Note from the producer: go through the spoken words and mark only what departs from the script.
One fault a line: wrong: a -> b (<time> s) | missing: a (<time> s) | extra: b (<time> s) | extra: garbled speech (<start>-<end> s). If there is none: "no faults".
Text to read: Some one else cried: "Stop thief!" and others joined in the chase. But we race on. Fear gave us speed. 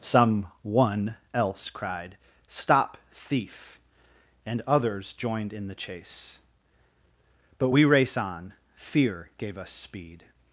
no faults